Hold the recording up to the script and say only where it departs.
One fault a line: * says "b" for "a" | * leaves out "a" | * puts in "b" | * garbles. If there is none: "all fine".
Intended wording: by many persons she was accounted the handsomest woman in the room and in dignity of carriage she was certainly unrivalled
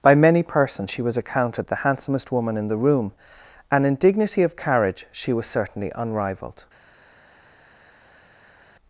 all fine